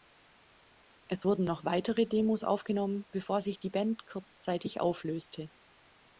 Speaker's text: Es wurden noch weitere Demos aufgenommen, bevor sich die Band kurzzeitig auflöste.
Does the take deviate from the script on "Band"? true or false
false